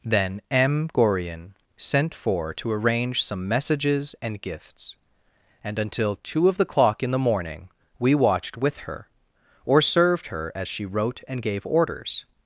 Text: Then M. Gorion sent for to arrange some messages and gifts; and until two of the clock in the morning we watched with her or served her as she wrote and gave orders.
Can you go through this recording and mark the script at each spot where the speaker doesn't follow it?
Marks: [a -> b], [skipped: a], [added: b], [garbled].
Then M. Gorion sent for to arrange some messages and gifts; and until two of the clock in the morning we watched with her or served her as she wrote and gave orders.